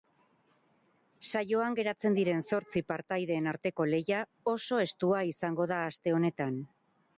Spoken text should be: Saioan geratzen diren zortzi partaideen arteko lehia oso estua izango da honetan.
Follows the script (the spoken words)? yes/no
no